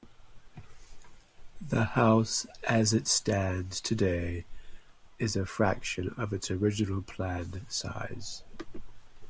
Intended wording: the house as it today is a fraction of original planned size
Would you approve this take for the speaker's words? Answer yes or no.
no